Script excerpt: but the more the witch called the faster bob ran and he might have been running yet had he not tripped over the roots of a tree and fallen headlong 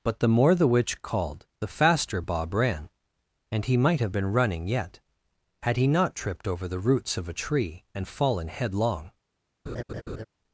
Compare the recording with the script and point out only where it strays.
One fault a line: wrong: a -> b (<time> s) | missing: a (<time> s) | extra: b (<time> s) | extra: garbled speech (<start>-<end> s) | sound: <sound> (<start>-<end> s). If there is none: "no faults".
sound: laugh (9.7-10.3 s)